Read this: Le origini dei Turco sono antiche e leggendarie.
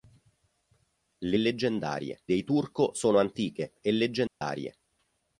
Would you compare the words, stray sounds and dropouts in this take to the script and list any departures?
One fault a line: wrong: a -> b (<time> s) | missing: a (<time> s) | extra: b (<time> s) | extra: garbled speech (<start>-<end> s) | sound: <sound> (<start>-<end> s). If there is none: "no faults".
wrong: origini -> leggendarie (1.4 s)
sound: dropout (4.3-4.4 s)